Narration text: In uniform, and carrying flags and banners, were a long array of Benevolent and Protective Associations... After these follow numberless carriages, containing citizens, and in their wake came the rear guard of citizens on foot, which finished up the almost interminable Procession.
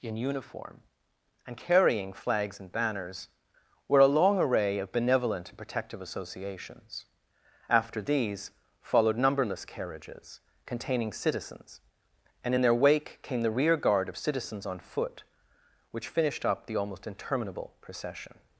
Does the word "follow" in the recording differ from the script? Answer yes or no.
yes